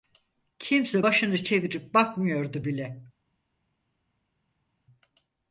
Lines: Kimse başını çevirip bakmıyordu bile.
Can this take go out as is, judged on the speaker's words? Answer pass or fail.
pass